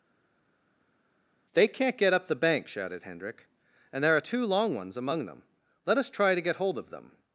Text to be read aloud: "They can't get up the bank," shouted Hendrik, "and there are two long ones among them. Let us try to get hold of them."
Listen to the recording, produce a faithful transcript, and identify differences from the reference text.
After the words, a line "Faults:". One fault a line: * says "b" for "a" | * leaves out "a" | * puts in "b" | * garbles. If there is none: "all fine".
"They can't get up the bank," shouted Hendrik, "and there are two long ones among them. Let us try to get hold of them."
Faults:
all fine